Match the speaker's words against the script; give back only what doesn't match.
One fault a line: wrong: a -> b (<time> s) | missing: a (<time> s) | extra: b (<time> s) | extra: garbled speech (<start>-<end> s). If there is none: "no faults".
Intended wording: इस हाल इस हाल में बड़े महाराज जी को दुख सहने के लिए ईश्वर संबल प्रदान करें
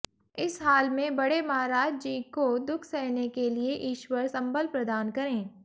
missing: इस हाल (0.9 s)